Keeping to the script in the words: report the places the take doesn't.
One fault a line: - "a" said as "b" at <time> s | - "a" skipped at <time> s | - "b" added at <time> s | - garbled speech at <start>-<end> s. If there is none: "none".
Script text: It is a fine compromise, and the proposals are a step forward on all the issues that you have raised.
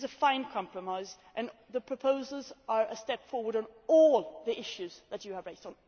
none